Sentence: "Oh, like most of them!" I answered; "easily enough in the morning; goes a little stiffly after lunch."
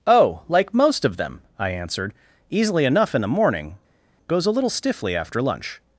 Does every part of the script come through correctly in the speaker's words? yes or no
yes